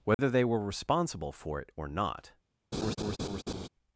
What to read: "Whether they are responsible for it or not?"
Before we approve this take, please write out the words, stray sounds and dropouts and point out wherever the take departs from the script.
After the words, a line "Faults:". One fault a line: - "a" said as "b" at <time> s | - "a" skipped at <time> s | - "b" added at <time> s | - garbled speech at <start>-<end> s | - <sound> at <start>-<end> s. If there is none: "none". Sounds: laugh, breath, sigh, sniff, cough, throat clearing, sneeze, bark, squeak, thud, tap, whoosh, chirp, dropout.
"Whether they were responsible for it or not?"
Faults:
- dropout at 0.1-0.2 s
- "are" said as "were" at 0.4 s
- laugh at 2.7-3.7 s